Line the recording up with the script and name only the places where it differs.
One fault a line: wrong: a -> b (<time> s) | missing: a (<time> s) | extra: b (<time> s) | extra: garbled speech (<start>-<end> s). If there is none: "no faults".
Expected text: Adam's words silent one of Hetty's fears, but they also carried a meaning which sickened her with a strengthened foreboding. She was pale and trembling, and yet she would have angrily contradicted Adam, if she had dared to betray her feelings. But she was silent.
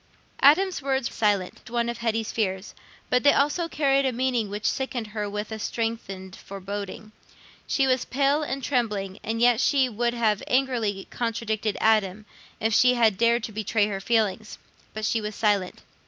no faults